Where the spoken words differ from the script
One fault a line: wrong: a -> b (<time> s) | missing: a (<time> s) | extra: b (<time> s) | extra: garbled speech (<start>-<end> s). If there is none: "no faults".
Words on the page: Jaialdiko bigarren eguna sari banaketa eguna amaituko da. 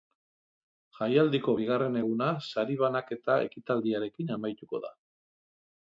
wrong: eguna -> ekitaldiarekin (3.5 s)